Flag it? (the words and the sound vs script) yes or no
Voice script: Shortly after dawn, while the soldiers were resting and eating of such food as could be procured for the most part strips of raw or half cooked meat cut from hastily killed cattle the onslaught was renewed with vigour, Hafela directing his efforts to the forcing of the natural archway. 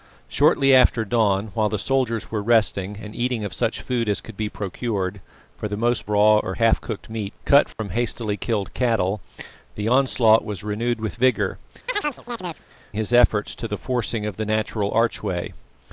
yes